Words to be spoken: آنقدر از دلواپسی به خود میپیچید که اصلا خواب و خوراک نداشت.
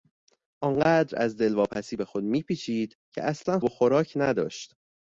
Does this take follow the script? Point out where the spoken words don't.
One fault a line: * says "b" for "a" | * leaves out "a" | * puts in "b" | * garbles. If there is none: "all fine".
* leaves out "خواب"